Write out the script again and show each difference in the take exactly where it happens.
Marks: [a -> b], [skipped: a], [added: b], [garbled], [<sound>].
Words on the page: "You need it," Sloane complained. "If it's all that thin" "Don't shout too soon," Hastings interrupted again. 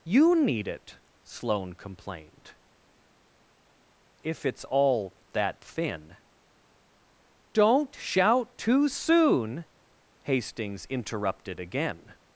"You need it," Sloane complained. "If it's all that thin" "Don't shout too soon," Hastings interrupted again.